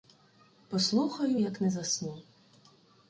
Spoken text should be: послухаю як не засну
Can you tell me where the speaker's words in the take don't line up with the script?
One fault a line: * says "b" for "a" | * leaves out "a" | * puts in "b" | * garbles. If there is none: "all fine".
all fine